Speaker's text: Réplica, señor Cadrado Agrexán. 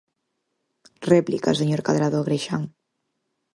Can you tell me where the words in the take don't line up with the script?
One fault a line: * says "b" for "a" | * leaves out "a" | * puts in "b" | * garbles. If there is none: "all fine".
all fine